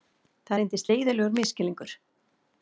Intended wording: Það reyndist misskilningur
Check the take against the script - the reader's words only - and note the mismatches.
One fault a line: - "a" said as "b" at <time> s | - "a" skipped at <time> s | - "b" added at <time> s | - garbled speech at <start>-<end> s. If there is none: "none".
- "leiðinlegur" added at 0.9 s